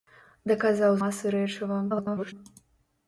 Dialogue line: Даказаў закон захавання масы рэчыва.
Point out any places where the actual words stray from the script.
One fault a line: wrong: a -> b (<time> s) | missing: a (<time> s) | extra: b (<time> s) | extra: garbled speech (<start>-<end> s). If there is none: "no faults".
missing: закон захавання (1.0 s)
extra: garbled speech (1.9-2.3 s)